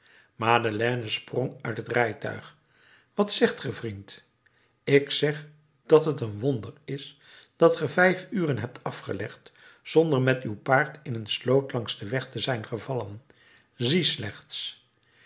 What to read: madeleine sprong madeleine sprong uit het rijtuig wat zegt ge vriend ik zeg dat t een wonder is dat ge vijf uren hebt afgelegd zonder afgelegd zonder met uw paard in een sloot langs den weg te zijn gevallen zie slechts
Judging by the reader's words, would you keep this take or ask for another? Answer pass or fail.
fail